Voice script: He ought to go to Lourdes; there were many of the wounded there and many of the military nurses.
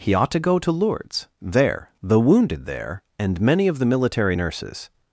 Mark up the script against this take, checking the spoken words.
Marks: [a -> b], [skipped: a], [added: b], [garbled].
He ought to go to Lourdes; there [skipped: were many of] the wounded there and many of the military nurses.